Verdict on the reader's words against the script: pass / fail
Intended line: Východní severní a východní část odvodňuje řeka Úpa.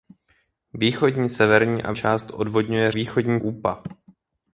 fail